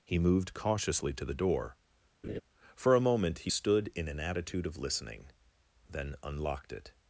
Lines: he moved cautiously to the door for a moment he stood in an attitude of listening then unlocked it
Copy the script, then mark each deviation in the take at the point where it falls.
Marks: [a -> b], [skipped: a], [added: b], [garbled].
he moved cautiously to the door for a moment he stood in an attitude of listening then unlocked it